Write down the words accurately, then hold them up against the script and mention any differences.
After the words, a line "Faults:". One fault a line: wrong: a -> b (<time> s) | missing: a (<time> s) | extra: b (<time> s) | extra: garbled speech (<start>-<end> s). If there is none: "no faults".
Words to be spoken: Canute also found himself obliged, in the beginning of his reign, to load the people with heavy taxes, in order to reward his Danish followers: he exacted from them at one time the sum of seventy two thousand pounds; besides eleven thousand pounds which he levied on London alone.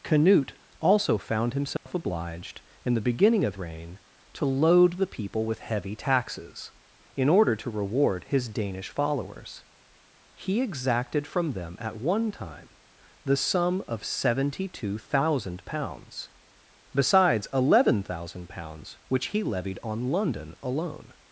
Canute also found himself obliged, in the beginning of reign, to load the people with heavy taxes, in order to reward his Danish followers: he exacted from them at one time the sum of seventy two thousand pounds; besides eleven thousand pounds which he levied on London alone.
Faults:
missing: his (3.5 s)